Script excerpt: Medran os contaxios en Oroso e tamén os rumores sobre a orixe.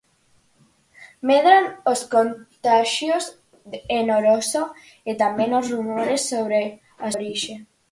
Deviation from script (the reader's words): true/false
false